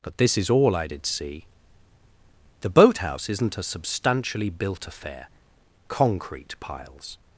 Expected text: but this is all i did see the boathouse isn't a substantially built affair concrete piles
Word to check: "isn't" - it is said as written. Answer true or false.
true